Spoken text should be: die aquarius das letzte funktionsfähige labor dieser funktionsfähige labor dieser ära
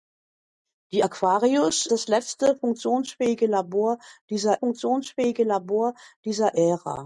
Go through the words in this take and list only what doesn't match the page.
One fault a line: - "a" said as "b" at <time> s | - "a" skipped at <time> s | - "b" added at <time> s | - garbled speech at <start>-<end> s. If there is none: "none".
none